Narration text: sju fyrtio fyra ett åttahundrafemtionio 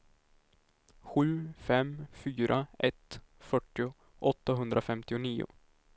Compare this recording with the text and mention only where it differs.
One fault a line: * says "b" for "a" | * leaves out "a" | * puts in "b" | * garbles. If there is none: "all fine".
* says "fem" for "fyrtio"
* puts in "fyrtio"